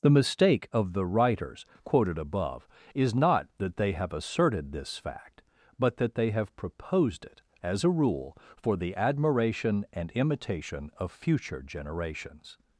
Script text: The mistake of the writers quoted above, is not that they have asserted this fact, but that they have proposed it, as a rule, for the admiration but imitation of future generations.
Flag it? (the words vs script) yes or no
yes